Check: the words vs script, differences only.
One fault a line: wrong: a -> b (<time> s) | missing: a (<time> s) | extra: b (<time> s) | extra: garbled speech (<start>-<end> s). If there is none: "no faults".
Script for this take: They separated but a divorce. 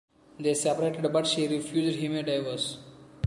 extra: she refused him (1.3 s)